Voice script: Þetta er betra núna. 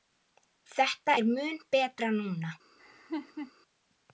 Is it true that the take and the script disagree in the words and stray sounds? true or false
true